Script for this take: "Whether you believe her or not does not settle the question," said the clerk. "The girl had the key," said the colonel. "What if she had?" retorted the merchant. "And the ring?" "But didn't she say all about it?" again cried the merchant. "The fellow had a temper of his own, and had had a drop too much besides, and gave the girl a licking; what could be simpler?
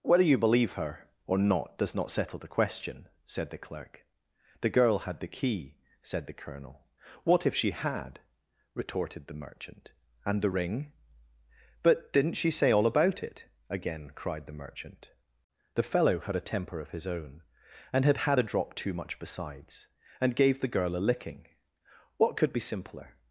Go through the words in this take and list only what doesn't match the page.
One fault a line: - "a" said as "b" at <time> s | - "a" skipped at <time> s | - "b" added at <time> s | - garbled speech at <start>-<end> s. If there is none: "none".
none